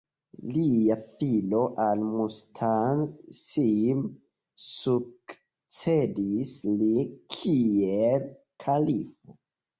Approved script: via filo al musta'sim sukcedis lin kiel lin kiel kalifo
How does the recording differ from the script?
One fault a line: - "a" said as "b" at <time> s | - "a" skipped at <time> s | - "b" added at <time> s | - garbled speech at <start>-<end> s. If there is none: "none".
- "via" said as "lia" at 0.5 s
- "lin kiel" skipped at 8.3 s